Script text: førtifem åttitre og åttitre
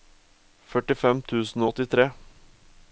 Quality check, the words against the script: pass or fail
fail